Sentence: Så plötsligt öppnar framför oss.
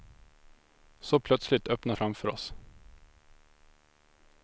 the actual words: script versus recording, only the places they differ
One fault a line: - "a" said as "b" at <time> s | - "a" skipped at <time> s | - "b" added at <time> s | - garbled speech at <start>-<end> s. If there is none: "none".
none